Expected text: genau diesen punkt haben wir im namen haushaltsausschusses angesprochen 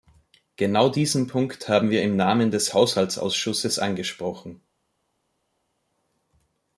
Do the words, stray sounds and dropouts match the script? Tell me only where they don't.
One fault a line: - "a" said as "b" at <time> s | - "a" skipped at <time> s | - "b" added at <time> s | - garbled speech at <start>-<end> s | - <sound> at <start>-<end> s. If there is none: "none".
- "des" added at 2.5 s